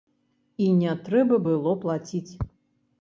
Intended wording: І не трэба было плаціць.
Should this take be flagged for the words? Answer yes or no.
no